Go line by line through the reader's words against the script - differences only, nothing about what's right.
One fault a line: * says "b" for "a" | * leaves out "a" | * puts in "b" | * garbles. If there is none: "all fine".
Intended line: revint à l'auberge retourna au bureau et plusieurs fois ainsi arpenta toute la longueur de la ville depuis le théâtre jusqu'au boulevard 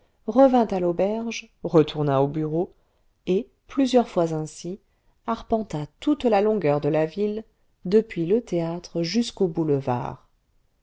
all fine